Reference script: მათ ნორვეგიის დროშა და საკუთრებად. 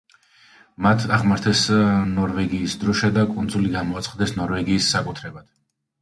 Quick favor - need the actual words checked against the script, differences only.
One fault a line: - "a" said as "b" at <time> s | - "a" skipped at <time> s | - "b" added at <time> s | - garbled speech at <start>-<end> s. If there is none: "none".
- "აღმართეს" added at 1.1 s
- "კუნძული გამოაცხადეს ნორვეგიის" added at 3.3 s